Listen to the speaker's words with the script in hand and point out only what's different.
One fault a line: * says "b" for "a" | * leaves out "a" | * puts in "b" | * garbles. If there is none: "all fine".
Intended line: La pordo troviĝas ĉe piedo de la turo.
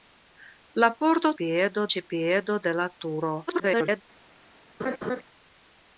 * says "piedo" for "troviĝas"
* garbles